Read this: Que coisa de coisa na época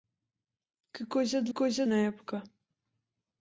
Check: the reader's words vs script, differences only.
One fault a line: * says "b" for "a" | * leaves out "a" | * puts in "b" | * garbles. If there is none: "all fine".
all fine